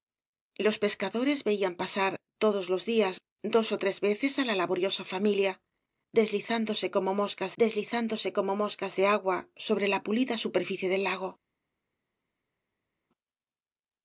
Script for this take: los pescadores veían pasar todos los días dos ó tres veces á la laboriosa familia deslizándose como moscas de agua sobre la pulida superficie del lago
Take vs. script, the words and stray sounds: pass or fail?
fail